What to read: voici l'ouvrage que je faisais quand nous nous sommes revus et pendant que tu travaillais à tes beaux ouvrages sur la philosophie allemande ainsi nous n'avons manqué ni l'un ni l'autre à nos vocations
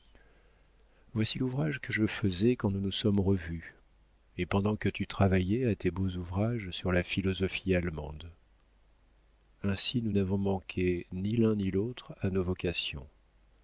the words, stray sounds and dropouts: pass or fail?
pass